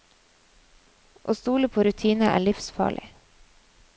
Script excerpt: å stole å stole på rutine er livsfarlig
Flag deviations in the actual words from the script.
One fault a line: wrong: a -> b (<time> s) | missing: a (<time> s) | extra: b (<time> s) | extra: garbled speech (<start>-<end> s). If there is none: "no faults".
missing: å stole (1.7 s)